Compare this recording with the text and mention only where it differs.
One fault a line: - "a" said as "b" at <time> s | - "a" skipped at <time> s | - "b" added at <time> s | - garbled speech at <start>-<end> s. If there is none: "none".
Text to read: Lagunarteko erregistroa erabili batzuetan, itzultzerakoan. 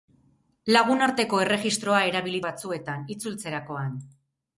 none